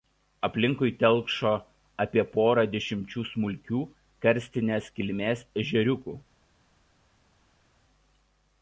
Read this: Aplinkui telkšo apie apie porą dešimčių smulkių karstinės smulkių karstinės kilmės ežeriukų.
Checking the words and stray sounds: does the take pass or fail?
fail